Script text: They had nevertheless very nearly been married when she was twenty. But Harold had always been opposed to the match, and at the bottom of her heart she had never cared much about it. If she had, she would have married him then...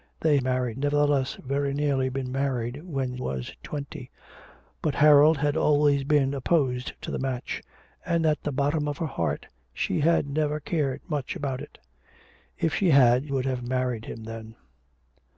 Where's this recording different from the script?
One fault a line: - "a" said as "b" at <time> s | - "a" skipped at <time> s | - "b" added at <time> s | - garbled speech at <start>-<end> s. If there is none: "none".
- "had" said as "married" at 0.4 s
- "she" skipped at 3.2 s
- "she" skipped at 13.3 s